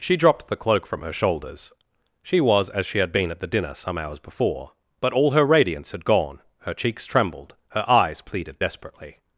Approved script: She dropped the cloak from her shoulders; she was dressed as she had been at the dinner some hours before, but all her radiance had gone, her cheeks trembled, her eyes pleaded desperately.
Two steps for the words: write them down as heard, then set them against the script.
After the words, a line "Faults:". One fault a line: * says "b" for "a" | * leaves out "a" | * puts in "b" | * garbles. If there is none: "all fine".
She dropped the cloak from her shoulders; she was as she had been at the dinner some hours before, but all her radiance had gone, her cheeks trembled, her eyes pleaded desperately.
Faults:
* leaves out "dressed"